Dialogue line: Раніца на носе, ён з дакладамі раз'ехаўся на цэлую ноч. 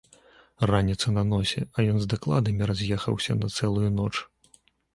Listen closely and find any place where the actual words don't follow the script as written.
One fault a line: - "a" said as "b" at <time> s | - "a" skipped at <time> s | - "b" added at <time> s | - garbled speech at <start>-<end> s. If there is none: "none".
- "а" added at 1.8 s